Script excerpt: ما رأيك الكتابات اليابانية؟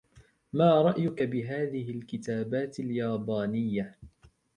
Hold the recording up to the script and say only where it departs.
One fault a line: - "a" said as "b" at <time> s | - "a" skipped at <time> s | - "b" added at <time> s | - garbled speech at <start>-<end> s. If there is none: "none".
- "بهذه" added at 1.2 s